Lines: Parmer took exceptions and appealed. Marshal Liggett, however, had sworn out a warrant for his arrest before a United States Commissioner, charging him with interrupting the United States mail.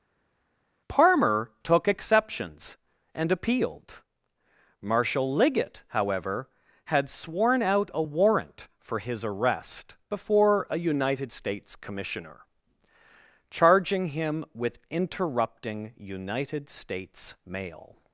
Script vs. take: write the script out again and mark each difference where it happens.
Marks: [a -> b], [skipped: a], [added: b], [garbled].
Parmer took exceptions and appealed. Marshal Liggett, however, had sworn out a warrant for his arrest before a United States Commissioner, charging him with interrupting [skipped: the] United States mail.